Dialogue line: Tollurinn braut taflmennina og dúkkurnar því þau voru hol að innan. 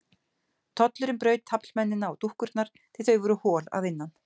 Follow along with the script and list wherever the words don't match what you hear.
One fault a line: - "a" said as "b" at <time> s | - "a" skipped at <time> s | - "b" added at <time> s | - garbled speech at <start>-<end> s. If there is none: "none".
none